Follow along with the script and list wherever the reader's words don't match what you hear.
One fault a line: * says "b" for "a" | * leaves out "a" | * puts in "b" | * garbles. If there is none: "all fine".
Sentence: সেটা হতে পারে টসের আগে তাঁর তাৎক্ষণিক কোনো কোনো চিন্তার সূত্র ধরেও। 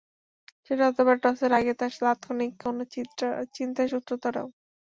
* leaves out "কোনো"